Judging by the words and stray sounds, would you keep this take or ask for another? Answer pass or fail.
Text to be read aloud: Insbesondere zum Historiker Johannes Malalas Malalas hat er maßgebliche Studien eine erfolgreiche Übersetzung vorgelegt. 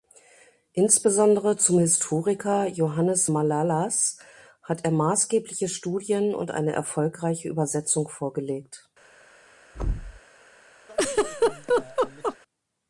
fail